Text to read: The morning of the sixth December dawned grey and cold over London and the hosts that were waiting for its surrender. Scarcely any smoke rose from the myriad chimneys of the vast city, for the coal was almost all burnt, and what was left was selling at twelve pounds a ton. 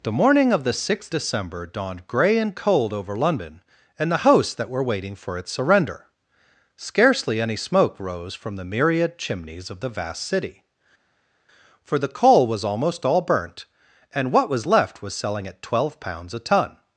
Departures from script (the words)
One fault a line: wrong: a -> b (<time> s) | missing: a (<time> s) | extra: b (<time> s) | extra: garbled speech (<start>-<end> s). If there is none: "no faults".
no faults